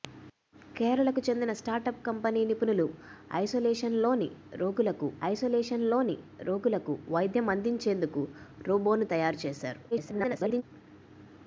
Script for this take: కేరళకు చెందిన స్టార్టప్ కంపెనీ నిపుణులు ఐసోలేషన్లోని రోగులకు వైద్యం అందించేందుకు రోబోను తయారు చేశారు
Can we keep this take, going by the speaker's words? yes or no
no